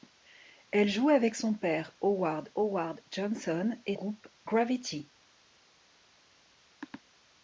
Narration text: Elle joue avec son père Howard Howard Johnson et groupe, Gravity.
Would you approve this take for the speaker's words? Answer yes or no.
yes